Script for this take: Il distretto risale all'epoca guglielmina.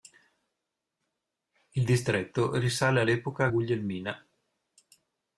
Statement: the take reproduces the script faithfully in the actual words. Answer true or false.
true